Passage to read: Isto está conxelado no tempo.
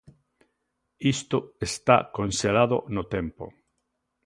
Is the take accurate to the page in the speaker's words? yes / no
yes